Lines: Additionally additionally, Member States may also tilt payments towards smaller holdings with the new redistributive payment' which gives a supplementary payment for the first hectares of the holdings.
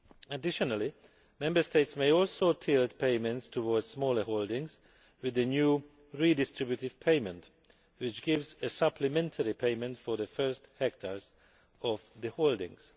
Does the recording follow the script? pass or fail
fail